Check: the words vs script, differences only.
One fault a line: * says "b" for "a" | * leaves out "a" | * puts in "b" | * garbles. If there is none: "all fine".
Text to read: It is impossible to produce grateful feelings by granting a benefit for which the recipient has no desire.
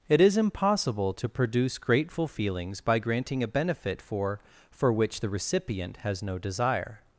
* puts in "for"